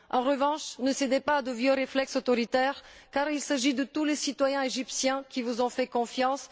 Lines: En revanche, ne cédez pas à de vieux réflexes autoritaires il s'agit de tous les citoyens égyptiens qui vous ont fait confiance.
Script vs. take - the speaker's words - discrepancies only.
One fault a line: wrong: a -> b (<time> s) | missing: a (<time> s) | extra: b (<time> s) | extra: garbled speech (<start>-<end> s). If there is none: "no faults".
extra: car (3.1 s)